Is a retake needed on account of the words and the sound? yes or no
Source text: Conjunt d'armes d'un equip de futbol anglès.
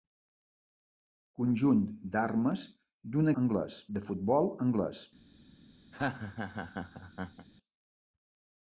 yes